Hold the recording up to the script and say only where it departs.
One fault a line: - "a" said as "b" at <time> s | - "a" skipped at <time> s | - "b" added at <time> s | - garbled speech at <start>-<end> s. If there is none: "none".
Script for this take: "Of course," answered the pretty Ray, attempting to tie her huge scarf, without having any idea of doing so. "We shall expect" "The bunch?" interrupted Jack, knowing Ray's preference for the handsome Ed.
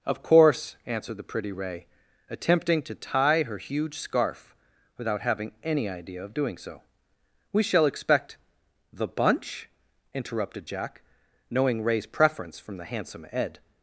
- "for" said as "from" at 12.6 s